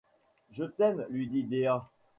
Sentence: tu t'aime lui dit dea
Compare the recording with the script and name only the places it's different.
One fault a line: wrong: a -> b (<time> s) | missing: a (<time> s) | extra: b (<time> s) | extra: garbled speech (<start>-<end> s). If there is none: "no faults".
wrong: tu -> je (0.5 s)